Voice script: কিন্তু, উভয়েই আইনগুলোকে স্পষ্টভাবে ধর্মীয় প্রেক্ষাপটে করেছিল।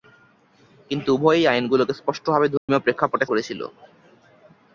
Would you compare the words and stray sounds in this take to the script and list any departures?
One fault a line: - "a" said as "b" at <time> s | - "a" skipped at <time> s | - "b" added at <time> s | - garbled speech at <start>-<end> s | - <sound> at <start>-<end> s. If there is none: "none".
- dropout at 2.6-2.7 s